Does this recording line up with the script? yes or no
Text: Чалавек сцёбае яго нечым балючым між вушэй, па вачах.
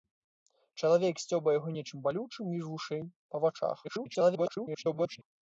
no